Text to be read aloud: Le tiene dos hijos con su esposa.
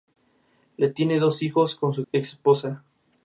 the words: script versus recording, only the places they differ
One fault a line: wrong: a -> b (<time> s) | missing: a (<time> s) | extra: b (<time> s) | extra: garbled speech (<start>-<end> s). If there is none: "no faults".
no faults